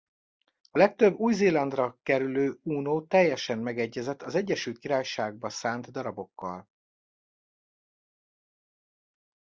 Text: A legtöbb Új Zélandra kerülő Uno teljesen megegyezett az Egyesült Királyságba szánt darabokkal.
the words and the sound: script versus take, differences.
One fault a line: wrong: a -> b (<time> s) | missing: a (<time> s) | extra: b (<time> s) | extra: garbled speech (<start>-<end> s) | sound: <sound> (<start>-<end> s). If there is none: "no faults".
no faults